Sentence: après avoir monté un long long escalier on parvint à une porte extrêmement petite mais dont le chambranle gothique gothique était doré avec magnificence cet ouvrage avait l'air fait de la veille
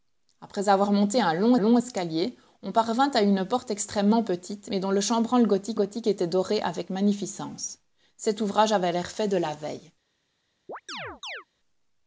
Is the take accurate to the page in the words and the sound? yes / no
no